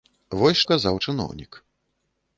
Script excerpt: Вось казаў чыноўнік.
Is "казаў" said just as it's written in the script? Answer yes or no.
yes